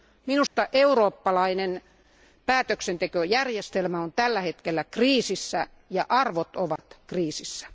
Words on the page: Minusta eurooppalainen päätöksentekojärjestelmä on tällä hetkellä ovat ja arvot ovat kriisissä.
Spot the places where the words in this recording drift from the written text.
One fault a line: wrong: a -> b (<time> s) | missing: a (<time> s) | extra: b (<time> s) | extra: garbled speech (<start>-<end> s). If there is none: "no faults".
wrong: ovat -> kriisissä (4.8 s)